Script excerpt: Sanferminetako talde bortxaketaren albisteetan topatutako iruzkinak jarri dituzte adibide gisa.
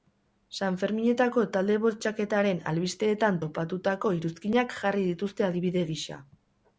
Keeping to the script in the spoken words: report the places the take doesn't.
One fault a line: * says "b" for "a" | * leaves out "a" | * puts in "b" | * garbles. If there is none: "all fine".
all fine